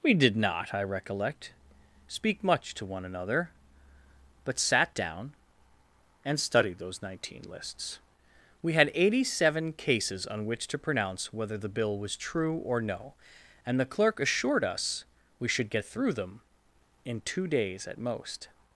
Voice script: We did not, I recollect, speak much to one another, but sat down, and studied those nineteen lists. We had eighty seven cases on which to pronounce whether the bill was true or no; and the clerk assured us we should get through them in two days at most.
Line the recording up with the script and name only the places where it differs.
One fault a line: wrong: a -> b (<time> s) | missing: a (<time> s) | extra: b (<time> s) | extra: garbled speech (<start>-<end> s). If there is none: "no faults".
no faults